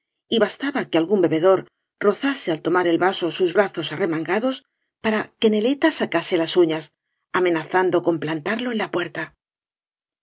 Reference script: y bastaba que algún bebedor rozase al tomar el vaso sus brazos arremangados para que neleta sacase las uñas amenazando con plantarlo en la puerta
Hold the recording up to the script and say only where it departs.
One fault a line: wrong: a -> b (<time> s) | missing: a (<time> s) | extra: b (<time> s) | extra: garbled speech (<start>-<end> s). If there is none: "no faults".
no faults